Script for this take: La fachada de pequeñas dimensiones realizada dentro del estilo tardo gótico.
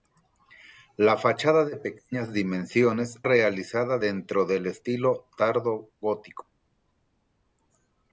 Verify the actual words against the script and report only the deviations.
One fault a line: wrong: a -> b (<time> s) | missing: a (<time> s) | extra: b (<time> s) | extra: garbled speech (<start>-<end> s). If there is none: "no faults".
no faults